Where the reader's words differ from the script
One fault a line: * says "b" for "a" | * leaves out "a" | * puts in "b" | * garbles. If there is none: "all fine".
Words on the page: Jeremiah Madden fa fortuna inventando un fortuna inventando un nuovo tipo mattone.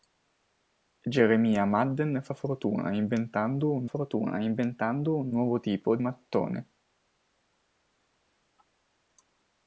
all fine